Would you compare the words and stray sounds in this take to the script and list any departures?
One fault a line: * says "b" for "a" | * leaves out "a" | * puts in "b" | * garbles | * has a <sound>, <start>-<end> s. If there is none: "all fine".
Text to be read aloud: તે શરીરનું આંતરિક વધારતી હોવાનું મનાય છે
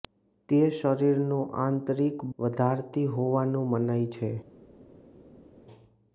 all fine